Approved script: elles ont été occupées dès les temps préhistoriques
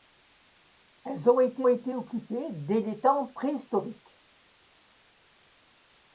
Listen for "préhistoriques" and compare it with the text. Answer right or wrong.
right